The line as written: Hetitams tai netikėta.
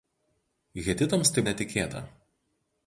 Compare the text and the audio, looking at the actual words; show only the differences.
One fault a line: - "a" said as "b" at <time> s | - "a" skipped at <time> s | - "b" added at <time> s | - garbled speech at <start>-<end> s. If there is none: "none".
none